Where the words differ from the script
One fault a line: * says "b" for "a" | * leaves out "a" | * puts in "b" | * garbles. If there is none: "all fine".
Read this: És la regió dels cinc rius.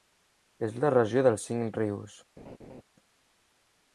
all fine